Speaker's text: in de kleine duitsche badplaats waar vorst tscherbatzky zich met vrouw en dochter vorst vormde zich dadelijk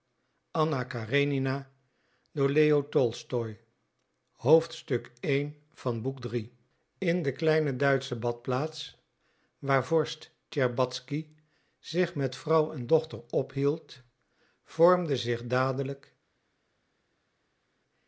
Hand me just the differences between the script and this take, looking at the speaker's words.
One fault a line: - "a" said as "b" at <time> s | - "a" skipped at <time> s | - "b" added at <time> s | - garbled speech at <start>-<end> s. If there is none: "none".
- "vorst" said as "ophield" at 13.3 s